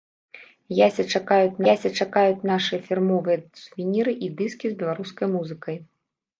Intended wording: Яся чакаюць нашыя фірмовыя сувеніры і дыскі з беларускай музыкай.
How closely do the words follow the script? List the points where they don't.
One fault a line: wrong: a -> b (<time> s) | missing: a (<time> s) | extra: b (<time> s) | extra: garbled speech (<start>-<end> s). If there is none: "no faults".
extra: яся чакаюць (1.7 s)